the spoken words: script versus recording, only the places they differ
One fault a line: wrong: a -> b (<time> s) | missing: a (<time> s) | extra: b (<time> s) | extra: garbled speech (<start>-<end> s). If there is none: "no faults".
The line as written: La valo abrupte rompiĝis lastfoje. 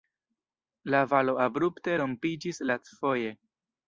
no faults